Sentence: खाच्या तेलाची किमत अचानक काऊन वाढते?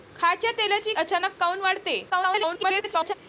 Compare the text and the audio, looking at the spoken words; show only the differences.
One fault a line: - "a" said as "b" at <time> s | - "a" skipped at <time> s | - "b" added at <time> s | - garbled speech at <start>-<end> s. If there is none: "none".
- "किमत" skipped at 0.9 s
- garbled speech at 2.1-3.1 s